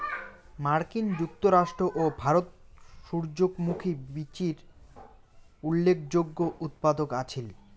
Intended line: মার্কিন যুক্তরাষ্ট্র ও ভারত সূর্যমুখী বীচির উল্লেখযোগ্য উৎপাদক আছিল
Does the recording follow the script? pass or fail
pass